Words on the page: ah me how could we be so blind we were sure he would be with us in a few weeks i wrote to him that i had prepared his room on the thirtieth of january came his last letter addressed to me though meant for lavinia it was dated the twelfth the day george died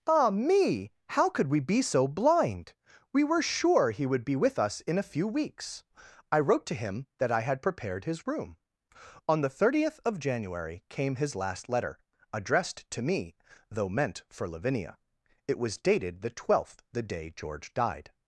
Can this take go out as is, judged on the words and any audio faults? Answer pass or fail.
pass